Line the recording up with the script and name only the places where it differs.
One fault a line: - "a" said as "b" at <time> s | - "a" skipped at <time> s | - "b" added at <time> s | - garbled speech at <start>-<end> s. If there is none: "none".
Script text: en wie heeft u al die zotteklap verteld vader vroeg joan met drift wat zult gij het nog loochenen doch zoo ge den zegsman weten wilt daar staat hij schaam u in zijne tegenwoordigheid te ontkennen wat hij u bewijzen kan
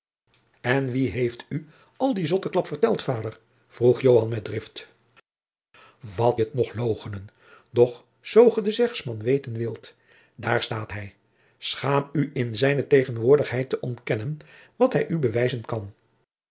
- "zult gij" skipped at 6.4 s